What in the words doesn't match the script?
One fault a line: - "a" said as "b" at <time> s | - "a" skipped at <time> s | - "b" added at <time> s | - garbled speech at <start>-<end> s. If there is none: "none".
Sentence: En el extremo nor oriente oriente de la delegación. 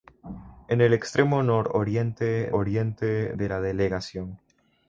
none